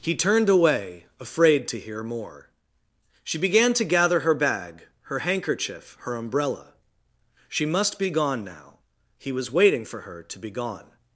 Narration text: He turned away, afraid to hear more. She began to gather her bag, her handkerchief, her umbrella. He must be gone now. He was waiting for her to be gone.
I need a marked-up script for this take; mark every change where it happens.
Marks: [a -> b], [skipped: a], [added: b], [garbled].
He turned away, afraid to hear more. She began to gather her bag, her handkerchief, her umbrella. [He -> She] must be gone now. He was waiting for her to be gone.